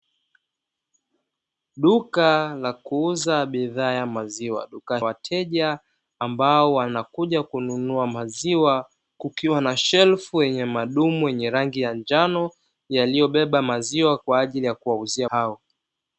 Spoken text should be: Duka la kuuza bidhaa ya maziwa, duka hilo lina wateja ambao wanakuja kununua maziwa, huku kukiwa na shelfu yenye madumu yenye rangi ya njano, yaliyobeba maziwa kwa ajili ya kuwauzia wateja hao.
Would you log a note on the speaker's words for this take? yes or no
yes